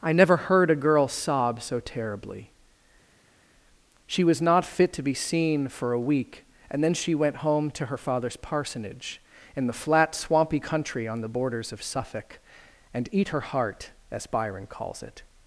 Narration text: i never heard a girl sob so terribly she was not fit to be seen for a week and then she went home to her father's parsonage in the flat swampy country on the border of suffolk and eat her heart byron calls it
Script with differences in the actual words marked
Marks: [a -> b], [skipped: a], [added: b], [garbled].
i never heard a girl sob so terribly she was not fit to be seen for a week and then she went home to her father's parsonage in the flat swampy country on the [border -> borders] of suffolk and eat her heart [added: as] byron calls it